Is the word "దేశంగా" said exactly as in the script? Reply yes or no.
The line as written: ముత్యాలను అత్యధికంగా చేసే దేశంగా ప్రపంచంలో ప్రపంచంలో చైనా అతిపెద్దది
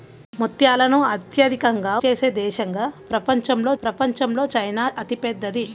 yes